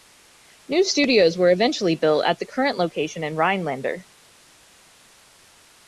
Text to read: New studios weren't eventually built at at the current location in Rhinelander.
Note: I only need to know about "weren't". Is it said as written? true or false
false